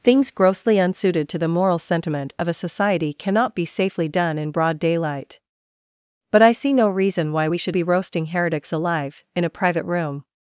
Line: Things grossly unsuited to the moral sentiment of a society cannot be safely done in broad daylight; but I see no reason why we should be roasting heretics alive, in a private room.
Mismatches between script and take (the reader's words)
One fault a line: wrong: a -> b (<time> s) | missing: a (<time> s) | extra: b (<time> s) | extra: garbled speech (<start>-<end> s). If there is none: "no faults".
no faults